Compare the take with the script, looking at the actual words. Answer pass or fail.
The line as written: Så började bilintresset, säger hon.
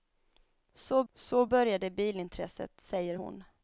fail